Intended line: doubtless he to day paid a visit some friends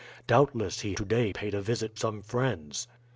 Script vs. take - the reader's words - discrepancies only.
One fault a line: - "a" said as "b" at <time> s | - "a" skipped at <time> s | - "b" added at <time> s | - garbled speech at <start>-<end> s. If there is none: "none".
none